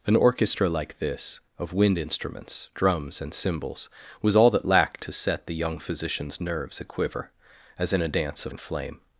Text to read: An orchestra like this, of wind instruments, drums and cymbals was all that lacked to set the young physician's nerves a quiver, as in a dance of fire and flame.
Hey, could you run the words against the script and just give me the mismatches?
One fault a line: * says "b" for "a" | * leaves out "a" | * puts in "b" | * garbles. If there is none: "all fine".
* leaves out "fire"